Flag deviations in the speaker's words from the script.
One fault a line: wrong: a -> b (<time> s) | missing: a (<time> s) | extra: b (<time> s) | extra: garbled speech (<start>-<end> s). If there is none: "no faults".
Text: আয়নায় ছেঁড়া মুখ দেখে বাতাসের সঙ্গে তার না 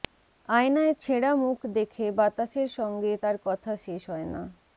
extra: কথা শেষ হয় (3.5 s)